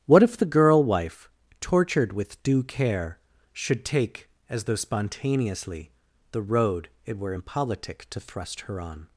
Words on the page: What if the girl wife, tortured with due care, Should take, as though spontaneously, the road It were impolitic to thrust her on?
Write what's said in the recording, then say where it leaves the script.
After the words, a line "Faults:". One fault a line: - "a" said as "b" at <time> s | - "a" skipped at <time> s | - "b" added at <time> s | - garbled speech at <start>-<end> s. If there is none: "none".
What if the girl wife, tortured with due care, Should take, as though spontaneously, the road It were impolitic to thrust her on?
Faults:
none